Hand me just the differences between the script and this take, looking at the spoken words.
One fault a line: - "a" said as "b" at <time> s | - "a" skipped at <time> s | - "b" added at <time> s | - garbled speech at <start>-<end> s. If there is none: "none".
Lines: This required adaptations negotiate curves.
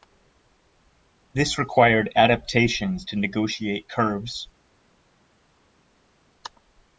- "to" added at 3.0 s